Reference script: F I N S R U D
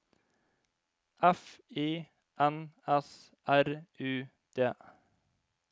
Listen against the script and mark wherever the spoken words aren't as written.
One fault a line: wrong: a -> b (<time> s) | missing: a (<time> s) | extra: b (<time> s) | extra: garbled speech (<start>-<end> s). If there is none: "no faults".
no faults